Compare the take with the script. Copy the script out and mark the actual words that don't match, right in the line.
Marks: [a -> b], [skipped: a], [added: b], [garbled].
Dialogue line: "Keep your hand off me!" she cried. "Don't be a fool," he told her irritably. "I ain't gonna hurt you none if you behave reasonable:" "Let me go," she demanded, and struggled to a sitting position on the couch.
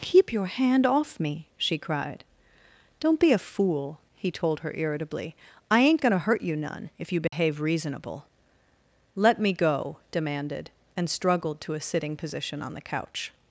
"Keep your hand off me!" she cried. "Don't be a fool," he told her irritably. "I ain't gonna hurt you none if you behave reasonable:" "Let me go," [skipped: she] demanded, and struggled to a sitting position on the couch.